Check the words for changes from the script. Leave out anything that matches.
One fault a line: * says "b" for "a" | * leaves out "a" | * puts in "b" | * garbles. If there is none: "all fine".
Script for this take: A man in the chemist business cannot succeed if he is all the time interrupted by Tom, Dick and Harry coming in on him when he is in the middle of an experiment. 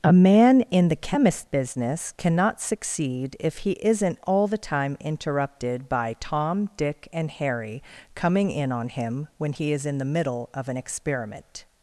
* says "isn't" for "is"